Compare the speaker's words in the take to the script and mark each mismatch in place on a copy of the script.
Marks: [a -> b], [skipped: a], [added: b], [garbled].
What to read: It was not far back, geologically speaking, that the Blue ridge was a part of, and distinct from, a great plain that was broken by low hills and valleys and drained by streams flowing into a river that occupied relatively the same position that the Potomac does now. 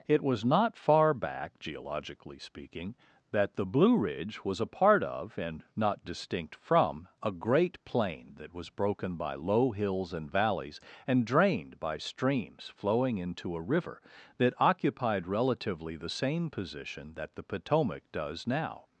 It was not far back, geologically speaking, that the Blue ridge was a part of, and [added: not] distinct from, a great plain that was broken by low hills and valleys and drained by streams flowing into a river that occupied relatively the same position that the Potomac does now.